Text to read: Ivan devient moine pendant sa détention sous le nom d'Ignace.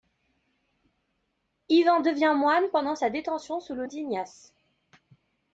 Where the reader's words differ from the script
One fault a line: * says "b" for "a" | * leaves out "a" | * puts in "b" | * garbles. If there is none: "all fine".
* leaves out "nom"